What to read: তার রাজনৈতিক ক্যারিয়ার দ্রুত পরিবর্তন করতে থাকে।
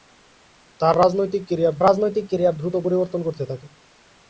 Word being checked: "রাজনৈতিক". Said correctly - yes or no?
yes